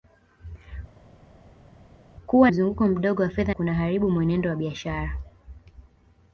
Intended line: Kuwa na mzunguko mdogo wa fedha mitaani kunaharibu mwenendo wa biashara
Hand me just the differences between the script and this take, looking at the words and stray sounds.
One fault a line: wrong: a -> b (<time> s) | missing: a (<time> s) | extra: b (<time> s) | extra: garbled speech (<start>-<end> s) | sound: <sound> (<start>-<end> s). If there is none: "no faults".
missing: na (2.5 s)
missing: mitaani (3.6 s)